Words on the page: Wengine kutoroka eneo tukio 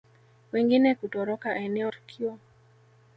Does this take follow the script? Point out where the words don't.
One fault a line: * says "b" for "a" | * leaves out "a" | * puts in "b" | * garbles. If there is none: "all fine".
all fine